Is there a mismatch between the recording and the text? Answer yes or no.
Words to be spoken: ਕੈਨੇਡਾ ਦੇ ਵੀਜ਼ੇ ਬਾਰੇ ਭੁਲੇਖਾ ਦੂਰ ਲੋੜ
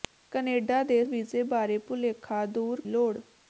no